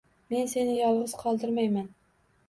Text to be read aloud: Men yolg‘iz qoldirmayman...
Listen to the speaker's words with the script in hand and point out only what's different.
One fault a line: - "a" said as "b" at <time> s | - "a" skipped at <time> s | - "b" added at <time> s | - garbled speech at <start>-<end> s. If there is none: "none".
- "seni" added at 0.5 s